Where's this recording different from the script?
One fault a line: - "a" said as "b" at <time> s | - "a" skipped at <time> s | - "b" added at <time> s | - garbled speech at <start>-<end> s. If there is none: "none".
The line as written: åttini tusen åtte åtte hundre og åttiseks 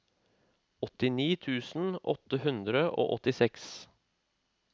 - "åtte" skipped at 2.4 s